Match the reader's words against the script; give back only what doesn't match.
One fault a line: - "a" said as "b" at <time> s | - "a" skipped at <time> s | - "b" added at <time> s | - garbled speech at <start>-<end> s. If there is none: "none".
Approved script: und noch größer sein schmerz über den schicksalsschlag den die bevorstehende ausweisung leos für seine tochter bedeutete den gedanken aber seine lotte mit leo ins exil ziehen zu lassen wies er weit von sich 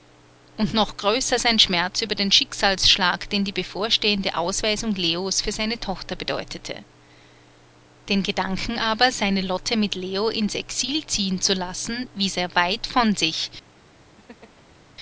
none